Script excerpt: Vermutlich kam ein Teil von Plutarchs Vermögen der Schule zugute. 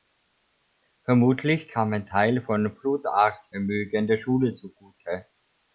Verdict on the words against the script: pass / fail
pass